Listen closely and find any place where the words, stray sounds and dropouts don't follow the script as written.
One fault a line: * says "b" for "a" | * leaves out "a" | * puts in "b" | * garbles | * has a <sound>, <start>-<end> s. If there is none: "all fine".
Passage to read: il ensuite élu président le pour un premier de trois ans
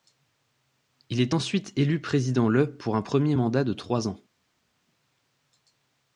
* puts in "est"
* puts in "mandat"